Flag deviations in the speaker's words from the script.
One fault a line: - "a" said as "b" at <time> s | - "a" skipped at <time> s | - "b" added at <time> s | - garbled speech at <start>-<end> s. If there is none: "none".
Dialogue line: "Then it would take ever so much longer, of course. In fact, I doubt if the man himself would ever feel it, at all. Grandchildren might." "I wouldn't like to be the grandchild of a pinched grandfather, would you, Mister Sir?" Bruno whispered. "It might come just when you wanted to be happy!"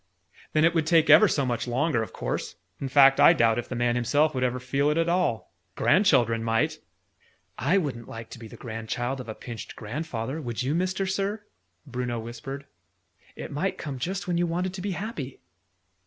none